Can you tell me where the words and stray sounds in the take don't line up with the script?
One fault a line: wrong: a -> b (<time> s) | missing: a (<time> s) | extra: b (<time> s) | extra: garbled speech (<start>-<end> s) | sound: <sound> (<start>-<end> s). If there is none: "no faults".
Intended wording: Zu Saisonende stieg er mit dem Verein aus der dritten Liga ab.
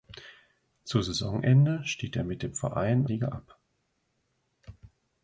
missing: aus der dritten (3.0 s)